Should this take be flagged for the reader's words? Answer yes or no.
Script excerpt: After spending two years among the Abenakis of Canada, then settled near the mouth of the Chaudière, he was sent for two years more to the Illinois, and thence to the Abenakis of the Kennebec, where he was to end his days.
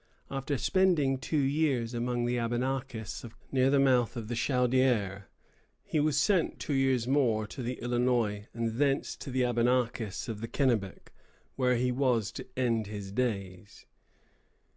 yes